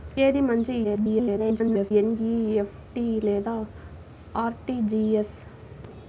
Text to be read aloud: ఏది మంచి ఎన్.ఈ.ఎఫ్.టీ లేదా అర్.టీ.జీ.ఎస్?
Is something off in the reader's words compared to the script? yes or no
yes